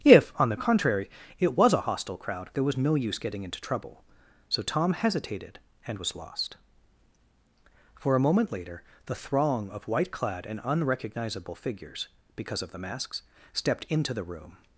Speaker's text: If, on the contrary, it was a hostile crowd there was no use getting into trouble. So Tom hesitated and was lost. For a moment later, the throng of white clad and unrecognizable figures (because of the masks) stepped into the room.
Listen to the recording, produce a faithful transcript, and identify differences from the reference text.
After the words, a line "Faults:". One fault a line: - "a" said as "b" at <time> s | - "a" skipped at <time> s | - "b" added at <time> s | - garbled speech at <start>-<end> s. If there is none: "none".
If, on the contrary, it was a hostile crowd there was no use getting into trouble. So Tom hesitated and was lost. For a moment later, the throng of white clad and unrecognizable figures (because of the masks) stepped into the room.
Faults:
none